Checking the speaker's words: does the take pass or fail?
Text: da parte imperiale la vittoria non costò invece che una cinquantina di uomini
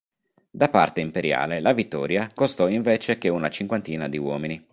fail